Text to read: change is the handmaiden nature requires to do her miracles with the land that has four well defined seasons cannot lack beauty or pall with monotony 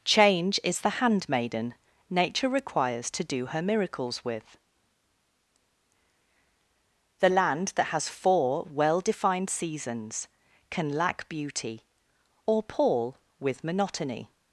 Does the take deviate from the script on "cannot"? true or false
true